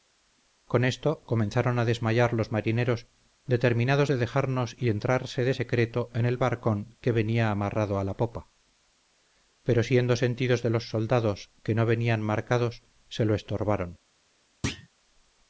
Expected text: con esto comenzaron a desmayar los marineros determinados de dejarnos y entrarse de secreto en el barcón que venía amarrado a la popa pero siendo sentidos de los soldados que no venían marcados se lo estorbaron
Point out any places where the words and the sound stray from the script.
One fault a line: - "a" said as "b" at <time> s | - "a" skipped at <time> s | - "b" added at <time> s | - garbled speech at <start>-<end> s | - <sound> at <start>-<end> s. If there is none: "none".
- thud at 14.6-14.9 s